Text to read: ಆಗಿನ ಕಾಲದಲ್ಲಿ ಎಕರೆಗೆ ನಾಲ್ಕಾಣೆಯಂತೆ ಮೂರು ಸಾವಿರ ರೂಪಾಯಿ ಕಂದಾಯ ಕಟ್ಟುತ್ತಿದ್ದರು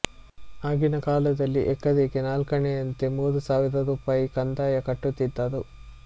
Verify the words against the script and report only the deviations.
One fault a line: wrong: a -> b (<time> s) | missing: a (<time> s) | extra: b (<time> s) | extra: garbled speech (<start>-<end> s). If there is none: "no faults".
no faults